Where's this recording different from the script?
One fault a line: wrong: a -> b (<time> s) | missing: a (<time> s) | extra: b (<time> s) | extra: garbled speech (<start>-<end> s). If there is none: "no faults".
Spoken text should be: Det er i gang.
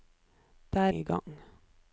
no faults